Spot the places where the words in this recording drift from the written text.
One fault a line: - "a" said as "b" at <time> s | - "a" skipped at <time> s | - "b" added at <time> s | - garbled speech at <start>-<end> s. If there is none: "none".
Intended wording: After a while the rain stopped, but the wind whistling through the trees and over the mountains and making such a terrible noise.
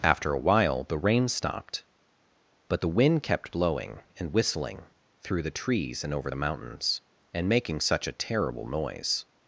- "kept blowing and" added at 3.2 s